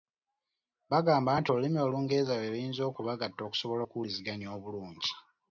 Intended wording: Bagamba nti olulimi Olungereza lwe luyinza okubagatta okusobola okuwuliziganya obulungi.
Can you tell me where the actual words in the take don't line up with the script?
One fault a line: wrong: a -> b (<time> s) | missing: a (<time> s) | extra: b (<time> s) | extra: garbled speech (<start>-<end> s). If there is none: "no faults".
no faults